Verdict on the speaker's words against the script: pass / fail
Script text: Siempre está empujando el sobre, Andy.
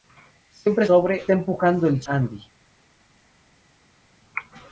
fail